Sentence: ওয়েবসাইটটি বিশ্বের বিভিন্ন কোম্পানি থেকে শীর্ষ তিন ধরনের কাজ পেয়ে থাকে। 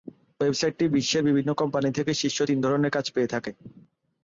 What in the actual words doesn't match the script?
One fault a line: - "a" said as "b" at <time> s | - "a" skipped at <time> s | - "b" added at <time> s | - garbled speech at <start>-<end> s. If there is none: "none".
none